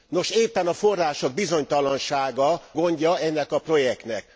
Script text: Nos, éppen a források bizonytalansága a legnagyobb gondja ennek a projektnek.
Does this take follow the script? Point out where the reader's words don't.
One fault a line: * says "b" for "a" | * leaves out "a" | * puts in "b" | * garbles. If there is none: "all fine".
* leaves out "a legnagyobb"